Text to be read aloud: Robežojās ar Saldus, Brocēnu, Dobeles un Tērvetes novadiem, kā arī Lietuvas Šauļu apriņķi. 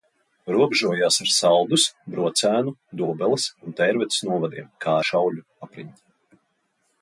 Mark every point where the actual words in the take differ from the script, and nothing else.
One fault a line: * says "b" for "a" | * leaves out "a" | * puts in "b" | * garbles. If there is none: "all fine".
* leaves out "arī Lietuvas"